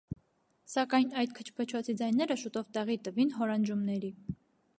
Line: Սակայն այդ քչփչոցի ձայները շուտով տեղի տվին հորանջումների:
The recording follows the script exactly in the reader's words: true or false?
true